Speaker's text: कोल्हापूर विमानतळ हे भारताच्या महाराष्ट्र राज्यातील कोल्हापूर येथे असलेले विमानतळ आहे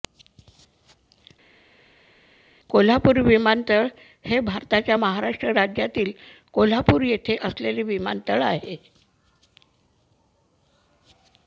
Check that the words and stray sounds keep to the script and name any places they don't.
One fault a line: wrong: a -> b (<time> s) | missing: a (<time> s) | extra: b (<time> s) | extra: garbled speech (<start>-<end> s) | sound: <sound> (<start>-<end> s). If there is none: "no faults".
no faults